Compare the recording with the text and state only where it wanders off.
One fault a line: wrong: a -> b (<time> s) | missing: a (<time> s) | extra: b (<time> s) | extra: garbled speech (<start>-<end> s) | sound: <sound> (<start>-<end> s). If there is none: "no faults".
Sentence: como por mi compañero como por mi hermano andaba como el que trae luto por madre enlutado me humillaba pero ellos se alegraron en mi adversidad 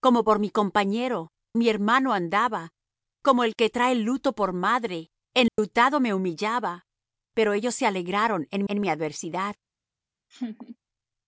missing: como por (1.3 s)
sound: dropout (5.5-5.6 s)
extra: en (8.7 s)
sound: laugh (10.3-10.8 s)